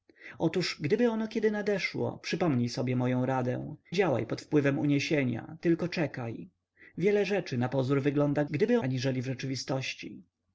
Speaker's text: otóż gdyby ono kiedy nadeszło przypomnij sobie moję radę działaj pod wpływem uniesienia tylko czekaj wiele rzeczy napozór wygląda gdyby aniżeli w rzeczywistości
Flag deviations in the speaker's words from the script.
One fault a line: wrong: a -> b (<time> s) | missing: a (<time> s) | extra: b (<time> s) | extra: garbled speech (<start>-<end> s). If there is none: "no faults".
no faults